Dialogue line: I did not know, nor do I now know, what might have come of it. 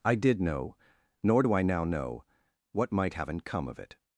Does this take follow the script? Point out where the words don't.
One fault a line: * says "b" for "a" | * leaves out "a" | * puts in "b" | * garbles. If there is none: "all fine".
* leaves out "not"
* says "haven't" for "have"